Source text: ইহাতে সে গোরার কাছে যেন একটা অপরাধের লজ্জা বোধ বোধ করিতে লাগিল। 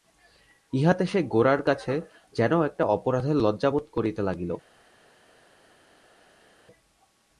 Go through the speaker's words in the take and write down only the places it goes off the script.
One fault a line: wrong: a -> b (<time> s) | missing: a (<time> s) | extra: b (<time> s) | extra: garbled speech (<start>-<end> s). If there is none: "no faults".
missing: বোধ (3.9 s)